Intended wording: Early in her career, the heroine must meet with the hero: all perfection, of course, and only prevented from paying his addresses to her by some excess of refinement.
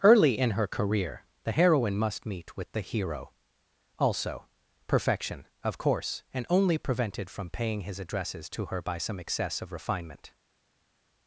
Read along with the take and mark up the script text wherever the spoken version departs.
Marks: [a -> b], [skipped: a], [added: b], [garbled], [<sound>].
Early in her career, the heroine must meet with the hero: [all -> also] perfection, of course, and only prevented from paying his addresses to her by some excess of refinement.